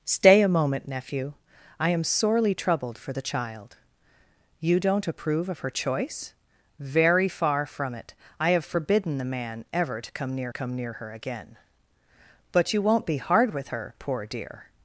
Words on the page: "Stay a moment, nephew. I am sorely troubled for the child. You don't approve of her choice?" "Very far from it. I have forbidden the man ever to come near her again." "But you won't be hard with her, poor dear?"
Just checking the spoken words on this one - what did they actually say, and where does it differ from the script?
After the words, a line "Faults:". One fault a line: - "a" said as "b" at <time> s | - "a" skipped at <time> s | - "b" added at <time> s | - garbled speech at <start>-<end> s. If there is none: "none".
"Stay a moment, nephew. I am sorely troubled for the child. You don't approve of her choice?" "Very far from it. I have forbidden the man ever to come near come near her again." "But you won't be hard with her, poor dear?"
Faults:
- "come near" added at 10.5 s